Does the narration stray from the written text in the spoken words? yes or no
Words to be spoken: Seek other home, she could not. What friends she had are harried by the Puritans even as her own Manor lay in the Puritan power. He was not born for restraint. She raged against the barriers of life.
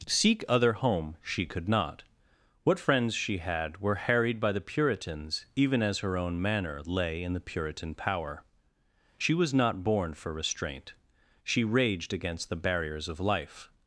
yes